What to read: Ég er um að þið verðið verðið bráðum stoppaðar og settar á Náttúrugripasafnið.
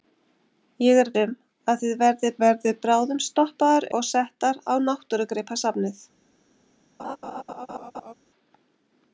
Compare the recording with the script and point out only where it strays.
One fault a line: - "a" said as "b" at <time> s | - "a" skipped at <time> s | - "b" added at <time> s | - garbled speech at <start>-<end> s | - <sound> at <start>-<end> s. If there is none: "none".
- laugh at 7.0-8.1 s